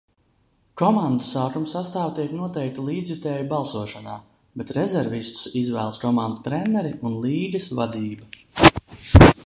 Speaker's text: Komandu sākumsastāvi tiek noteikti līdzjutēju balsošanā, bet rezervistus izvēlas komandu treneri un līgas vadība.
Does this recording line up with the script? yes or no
yes